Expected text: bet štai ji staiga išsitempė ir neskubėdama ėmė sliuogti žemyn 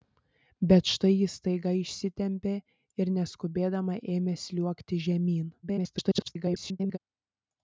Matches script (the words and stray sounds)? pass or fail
fail